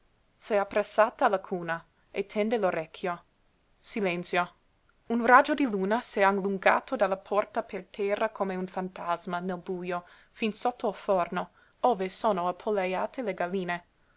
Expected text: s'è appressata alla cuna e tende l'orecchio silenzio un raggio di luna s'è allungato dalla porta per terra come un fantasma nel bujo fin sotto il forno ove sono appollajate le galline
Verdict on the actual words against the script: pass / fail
pass